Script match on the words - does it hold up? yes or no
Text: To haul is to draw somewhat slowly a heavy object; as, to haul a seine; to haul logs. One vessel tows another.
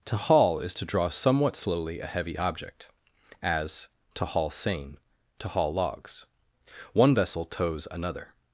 no